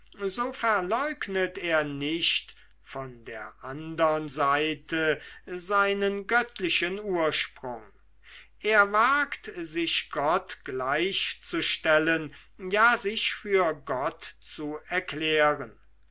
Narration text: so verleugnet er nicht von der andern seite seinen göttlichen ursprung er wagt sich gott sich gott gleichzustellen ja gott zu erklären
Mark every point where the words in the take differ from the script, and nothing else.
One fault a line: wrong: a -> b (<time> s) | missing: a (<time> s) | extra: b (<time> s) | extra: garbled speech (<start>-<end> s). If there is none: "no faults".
wrong: sich gott gleichzustellen ja -> gleichzustellen ja sich für (10.6 s)